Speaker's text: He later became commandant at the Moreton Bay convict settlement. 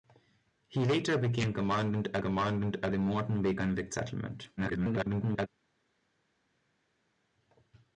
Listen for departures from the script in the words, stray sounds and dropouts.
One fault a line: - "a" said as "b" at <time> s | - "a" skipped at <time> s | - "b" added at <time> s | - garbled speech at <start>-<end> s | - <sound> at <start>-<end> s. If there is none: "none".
- "commandant at" added at 2.2 s
- garbled speech at 4.6-5.5 s